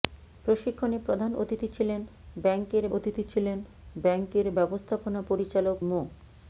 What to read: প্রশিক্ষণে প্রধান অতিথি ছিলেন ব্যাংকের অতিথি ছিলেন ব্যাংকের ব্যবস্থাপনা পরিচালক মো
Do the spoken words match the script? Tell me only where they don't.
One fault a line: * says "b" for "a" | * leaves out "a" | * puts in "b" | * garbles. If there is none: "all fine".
all fine